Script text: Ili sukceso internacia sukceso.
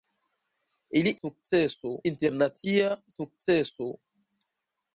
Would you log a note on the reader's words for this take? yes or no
no